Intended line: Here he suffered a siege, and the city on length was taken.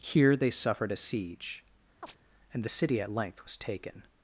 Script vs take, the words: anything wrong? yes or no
yes